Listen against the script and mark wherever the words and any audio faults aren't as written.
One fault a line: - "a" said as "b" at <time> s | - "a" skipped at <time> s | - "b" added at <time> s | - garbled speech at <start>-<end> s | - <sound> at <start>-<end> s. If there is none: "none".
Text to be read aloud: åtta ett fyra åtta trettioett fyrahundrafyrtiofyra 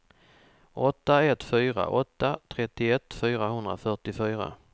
none